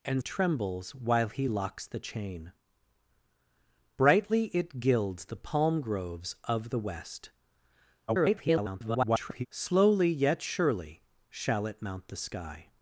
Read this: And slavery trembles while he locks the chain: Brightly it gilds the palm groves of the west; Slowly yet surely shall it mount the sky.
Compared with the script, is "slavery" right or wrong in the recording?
wrong